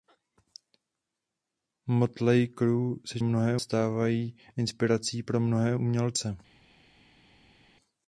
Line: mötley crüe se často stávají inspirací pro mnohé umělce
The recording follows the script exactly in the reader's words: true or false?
false